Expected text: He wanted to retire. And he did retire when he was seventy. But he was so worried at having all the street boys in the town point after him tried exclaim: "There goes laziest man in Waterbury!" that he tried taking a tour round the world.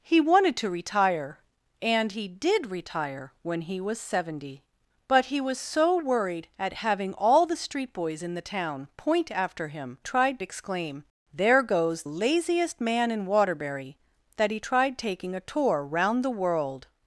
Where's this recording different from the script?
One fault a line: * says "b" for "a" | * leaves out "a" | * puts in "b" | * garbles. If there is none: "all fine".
all fine